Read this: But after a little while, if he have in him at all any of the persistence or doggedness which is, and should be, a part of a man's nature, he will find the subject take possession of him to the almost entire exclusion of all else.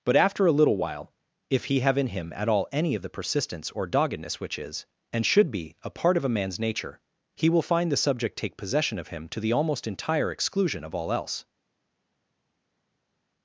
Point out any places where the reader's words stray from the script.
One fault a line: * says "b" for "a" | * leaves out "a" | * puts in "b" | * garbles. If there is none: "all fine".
all fine